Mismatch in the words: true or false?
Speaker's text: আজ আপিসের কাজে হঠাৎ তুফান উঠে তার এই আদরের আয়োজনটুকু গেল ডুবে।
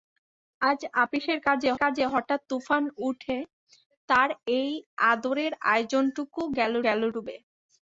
true